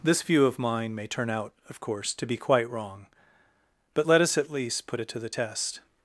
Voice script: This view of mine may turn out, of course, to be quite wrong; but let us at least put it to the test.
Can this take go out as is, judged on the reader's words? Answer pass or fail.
pass